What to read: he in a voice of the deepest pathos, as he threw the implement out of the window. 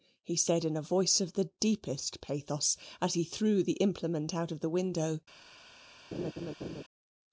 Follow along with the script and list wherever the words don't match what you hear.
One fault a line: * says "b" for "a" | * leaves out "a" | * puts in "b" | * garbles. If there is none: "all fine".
* puts in "said"